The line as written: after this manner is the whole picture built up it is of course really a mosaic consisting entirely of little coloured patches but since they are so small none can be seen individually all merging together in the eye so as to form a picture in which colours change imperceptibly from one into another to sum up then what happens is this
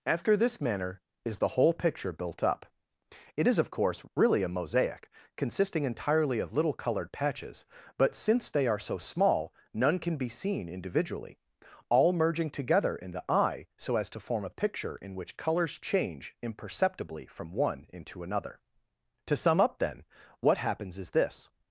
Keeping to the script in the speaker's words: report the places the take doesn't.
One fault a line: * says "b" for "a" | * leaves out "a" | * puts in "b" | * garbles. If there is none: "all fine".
all fine